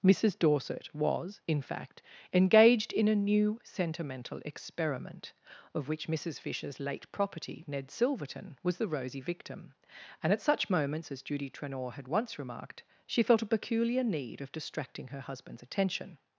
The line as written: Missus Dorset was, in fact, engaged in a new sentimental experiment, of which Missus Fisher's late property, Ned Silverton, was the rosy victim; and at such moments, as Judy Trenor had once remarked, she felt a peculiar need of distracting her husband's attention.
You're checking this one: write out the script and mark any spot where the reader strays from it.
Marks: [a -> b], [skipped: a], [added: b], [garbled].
Missus Dorset was, in fact, engaged in a new sentimental experiment, of which Missus Fisher's late property, Ned Silverton, was the rosy victim; and at such moments, as Judy Trenor had once remarked, she felt a peculiar need of distracting her husband's attention.